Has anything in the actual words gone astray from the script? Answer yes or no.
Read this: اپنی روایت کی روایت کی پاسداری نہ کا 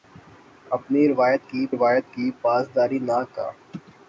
no